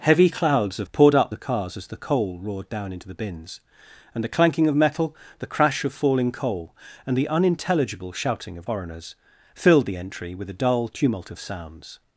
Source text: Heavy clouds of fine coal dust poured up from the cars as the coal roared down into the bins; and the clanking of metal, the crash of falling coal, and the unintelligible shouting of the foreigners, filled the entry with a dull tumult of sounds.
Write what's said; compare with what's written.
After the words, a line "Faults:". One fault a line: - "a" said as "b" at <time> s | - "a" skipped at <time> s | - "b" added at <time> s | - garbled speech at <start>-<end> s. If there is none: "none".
Heavy clouds of poured up the cars as the coal roared down into the bins; and the clanking of metal, the crash of falling coal, and the unintelligible shouting of foreigners, filled the entry with a dull tumult of sounds.
Faults:
- "fine coal dust" skipped at 0.9 s
- "from" skipped at 1.3 s
- "the" skipped at 8.7 s